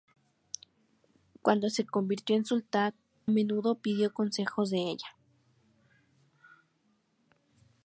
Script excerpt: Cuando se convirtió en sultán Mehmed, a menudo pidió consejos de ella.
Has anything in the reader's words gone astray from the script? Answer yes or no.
yes